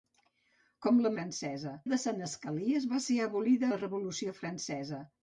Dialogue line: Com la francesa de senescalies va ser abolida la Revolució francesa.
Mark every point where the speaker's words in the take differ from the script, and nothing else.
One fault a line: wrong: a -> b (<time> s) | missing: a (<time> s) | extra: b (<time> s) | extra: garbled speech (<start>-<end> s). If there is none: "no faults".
no faults